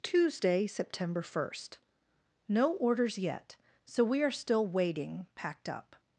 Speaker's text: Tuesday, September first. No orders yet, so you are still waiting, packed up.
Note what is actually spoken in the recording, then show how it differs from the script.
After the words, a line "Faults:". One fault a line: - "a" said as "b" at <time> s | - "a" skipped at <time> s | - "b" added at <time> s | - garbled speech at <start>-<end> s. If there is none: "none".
Tuesday, September first. No orders yet, so we are still waiting, packed up.
Faults:
- "you" said as "we" at 4.0 s